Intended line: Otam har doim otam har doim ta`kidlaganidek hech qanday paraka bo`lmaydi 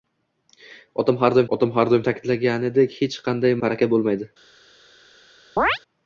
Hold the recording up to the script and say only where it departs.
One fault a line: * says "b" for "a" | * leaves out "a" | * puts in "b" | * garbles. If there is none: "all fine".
all fine